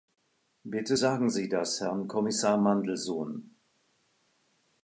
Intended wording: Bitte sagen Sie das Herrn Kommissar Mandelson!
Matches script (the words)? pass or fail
pass